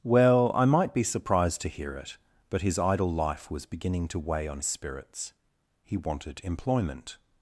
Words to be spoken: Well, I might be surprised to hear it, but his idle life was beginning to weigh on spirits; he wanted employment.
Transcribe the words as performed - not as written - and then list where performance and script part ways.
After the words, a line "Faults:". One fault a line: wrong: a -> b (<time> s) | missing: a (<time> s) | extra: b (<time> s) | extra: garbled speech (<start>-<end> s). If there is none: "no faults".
Well, I might be surprised to hear it, but his idle life was beginning to weigh on spirits; he wanted employment.
Faults:
no faults